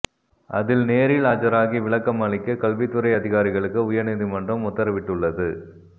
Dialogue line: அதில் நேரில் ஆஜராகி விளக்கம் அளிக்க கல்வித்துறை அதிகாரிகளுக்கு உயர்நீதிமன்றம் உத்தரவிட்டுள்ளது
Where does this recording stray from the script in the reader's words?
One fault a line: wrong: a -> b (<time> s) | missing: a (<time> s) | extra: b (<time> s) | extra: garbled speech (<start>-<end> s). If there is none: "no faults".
no faults